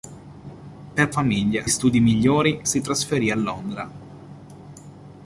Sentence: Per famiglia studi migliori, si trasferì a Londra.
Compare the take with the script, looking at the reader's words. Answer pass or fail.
pass